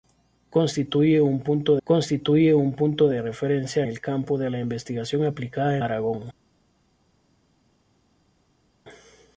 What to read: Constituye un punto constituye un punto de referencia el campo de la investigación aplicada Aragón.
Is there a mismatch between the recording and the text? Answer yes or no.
no